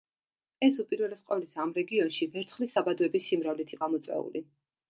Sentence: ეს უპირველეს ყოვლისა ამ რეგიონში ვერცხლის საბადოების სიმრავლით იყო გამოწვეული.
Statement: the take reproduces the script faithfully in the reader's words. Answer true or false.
false